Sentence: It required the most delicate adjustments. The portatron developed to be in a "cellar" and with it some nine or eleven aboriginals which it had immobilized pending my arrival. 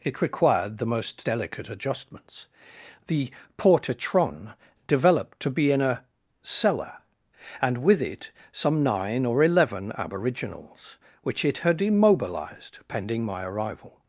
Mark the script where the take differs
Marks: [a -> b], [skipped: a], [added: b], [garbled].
It required the most delicate adjustments. The portatron developed to be in a "cellar" and with it some nine or eleven aboriginals which it had immobilized pending my arrival.